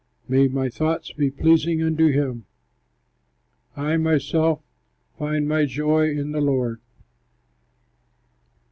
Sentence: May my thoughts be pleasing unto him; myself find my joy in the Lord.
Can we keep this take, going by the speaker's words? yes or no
no